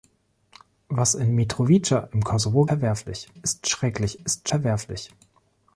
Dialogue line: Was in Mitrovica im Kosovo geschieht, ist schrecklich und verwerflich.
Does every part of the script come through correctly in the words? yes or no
no